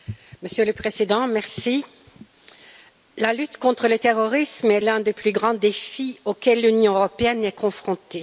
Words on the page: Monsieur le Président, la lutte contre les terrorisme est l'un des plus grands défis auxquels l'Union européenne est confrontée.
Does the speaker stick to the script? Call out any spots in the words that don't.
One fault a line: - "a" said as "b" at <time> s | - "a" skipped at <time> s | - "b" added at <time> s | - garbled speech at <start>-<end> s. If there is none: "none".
- "les" said as "le" at 3.9 s